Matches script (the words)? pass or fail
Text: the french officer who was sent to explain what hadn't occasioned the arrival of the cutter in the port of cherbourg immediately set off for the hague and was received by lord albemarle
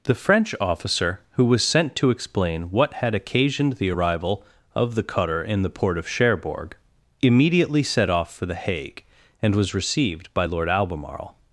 fail